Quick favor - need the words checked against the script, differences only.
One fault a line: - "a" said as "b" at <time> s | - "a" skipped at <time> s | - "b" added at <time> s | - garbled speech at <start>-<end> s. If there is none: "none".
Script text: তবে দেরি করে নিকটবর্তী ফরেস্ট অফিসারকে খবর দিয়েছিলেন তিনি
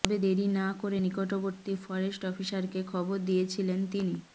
- "না" added at 0.5 s